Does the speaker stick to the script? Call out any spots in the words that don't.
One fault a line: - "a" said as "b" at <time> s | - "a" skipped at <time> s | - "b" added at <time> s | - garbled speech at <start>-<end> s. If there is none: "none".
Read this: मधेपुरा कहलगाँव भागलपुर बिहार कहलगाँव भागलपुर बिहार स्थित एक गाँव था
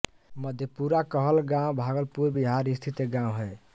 - "कहलगाँव भागलपुर बिहार" skipped at 2.7 s
- "था" said as "है" at 3.4 s